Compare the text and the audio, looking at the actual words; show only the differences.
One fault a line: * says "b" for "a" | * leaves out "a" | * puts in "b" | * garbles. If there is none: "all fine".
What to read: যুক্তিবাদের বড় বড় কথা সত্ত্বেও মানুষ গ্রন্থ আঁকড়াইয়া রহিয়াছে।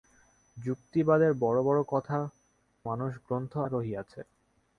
* leaves out "সত্ত্বেও"
* leaves out "আঁকড়াইয়া"